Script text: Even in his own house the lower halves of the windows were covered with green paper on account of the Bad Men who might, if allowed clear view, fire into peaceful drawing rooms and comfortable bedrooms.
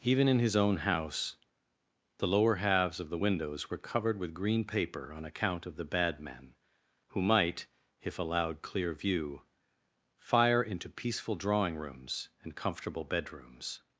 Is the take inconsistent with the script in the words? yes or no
no